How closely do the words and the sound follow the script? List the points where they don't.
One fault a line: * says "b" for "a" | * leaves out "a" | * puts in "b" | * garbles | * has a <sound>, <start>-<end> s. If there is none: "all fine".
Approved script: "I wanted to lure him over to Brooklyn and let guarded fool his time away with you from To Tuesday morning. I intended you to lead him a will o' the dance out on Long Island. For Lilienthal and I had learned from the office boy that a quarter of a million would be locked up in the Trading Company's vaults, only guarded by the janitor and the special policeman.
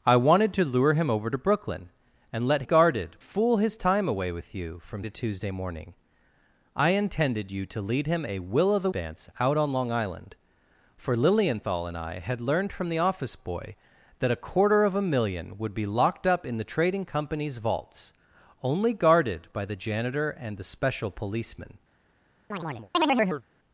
* has a chirp, 22.5-23.4 s